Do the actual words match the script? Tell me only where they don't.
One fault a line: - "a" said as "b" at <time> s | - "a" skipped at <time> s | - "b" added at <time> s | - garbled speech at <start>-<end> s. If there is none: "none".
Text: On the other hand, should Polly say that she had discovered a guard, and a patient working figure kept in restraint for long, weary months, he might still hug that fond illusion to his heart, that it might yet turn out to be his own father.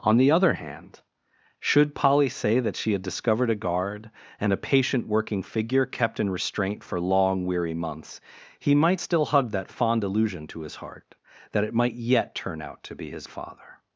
- "own" skipped at 13.3 s